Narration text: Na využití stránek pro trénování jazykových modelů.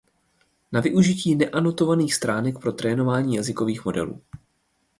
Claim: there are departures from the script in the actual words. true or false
true